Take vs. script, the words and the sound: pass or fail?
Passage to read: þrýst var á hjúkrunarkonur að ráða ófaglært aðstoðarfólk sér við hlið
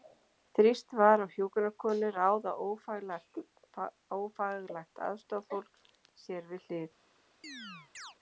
fail